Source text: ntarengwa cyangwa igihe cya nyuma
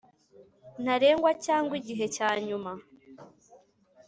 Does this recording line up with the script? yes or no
yes